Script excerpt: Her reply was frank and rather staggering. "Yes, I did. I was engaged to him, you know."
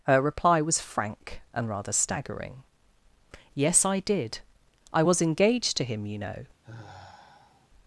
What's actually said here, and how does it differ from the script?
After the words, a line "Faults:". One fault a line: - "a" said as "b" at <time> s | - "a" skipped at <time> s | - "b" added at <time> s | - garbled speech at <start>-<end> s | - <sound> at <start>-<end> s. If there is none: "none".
Her reply was frank and rather staggering. "Yes, I did. I was engaged to him, you know."
Faults:
- sigh at 6.6-7.7 s